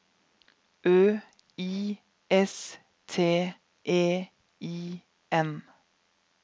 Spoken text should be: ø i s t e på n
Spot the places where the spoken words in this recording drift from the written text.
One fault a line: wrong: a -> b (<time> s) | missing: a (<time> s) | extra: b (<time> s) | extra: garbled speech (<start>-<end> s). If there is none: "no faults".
wrong: på -> i (4.6 s)